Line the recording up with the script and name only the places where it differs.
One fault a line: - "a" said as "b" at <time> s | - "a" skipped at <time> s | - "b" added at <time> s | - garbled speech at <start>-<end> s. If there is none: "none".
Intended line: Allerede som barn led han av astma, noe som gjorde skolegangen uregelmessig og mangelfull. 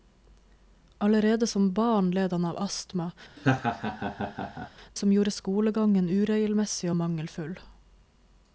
- "noe" skipped at 3.1 s